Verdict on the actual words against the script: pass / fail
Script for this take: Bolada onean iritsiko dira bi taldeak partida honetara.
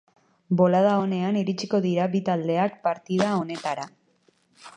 pass